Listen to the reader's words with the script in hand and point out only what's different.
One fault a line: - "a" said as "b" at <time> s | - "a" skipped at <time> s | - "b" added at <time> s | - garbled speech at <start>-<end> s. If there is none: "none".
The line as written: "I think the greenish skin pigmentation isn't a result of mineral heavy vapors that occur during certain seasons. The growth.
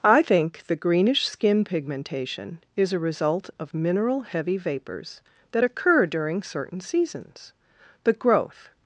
- "isn't" said as "is" at 2.8 s